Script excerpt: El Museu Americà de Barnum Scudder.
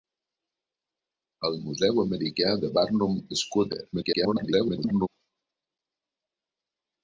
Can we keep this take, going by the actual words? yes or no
no